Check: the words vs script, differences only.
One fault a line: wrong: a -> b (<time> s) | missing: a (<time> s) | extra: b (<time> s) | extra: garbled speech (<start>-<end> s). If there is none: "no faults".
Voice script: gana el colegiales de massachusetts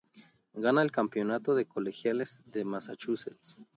extra: campeonato de (0.9 s)